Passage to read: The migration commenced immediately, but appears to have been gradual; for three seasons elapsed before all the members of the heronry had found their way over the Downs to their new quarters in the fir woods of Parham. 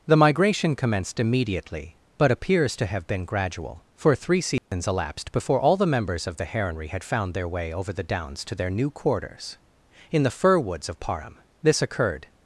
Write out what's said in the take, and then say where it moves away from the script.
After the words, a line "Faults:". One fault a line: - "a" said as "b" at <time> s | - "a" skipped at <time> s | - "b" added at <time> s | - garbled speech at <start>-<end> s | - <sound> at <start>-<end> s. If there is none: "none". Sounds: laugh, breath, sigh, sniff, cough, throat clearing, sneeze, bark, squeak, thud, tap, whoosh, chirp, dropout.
The migration commenced immediately, but appears to have been gradual; for three seasons elapsed before all the members of the heronry had found their way over the Downs to their new quarters in the fir woods of Parham. This occurred
Faults:
- dropout at 4.6-4.7 s
- "This occurred" added at 11.6 s